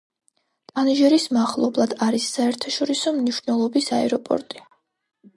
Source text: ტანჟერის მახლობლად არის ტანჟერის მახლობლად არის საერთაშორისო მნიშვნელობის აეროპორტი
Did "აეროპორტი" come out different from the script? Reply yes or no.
no